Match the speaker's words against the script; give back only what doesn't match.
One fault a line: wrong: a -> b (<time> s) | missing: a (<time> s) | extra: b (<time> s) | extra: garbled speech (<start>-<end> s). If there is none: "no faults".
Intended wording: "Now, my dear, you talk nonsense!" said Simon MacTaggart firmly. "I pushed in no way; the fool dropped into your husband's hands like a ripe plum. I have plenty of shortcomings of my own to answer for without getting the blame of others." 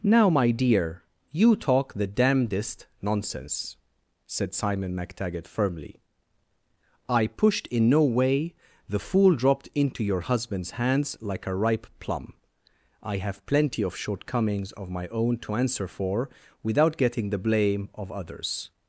extra: the damnedest (1.9 s)